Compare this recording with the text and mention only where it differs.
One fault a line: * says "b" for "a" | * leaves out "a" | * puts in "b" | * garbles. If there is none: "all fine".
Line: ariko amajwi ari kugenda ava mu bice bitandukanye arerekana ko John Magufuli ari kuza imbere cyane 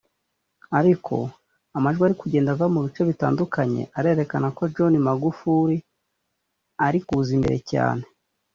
all fine